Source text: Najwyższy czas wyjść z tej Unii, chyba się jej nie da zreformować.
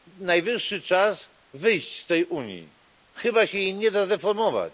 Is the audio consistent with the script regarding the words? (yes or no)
yes